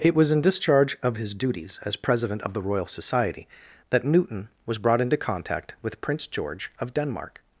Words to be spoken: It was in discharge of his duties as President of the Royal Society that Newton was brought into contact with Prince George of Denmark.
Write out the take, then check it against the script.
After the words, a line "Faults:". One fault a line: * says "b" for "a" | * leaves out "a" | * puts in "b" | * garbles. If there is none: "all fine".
It was in discharge of his duties as President of the Royal Society that Newton was brought into contact with Prince George of Denmark.
Faults:
all fine